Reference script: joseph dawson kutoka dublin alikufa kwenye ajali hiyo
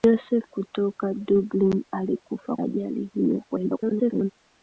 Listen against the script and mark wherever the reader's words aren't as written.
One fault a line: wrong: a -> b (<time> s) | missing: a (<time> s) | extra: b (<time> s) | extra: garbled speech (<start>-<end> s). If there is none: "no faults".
missing: dawson (0.5 s)
missing: kwenye (2.6 s)
extra: garbled speech (3.5-4.3 s)